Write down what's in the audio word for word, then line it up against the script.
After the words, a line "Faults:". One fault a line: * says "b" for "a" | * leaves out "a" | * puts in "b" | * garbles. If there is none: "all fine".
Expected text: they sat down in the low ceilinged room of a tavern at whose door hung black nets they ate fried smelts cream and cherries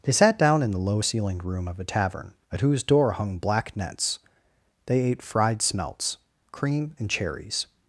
they sat down in the low ceilinged room of a tavern at whose door hung black nets they ate fried smelts cream and cherries
Faults:
all fine